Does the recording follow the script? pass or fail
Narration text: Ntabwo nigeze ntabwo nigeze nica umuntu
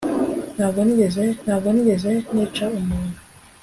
pass